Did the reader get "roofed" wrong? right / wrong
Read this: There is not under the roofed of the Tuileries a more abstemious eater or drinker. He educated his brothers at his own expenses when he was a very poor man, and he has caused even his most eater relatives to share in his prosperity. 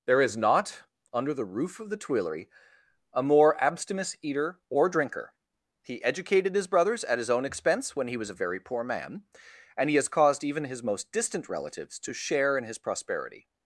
wrong